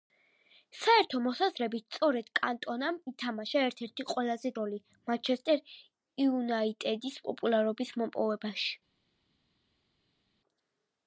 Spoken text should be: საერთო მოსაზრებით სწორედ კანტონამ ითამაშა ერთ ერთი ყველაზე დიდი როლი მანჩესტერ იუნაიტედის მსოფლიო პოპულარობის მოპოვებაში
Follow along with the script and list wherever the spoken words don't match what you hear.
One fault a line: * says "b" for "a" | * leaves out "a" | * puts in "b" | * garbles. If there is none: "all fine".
* leaves out "დიდი"
* leaves out "მსოფლიო"